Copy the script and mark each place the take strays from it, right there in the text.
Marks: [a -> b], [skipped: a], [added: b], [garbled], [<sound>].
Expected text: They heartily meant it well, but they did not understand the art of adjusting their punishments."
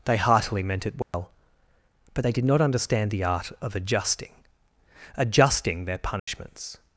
They heartily meant it well, [dropout] but they did not understand the art of adjusting [added: adjusting] their punishments." [dropout]